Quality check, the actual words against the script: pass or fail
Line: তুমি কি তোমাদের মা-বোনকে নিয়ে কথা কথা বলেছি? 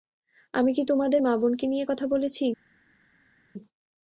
fail